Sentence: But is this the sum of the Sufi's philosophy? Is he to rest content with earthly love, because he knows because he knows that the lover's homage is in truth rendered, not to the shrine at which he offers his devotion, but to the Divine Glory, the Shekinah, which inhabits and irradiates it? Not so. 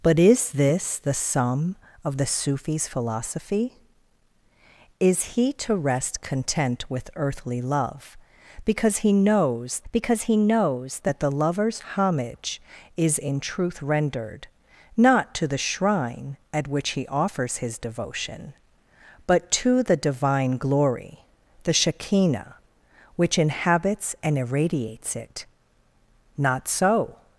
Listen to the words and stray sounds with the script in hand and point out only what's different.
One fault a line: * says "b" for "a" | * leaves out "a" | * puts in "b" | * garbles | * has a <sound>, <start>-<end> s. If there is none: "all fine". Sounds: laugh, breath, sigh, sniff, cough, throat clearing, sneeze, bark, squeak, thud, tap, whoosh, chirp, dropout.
all fine